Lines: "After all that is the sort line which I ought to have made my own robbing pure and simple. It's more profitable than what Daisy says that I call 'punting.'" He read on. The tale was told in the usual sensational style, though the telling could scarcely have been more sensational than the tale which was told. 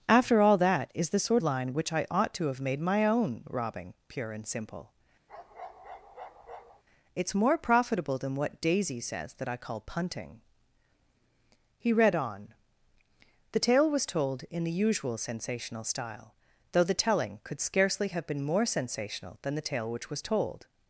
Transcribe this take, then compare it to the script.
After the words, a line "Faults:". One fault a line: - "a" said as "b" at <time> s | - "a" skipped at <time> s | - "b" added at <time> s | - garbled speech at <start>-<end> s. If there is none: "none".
"After all that is the sort line which I ought to have made my own robbing pure and simple. It's more profitable than what Daisy says that I call 'punting.'" He read on. The tale was told in the usual sensational style, though the telling could scarcely have been more sensational than the tale which was told.
Faults:
none